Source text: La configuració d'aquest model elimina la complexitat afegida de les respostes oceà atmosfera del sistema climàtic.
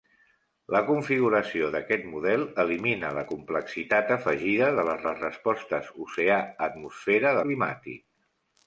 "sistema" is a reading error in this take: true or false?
true